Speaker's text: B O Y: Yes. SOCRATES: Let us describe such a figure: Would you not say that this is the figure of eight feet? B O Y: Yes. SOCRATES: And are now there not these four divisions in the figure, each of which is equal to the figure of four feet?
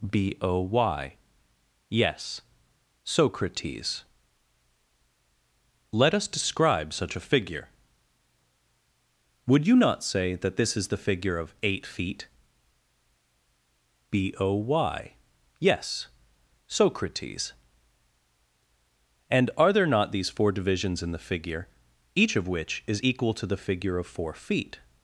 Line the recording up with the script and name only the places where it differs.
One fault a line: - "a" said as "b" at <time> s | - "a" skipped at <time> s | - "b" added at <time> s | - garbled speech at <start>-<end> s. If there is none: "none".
- "now" skipped at 19.7 s